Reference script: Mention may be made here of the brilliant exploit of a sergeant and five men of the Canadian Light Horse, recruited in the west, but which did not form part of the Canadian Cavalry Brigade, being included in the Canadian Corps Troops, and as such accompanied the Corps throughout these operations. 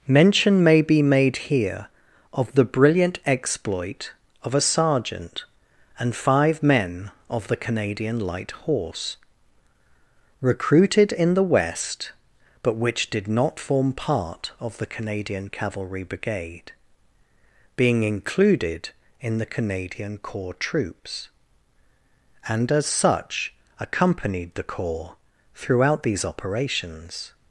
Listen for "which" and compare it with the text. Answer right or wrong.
right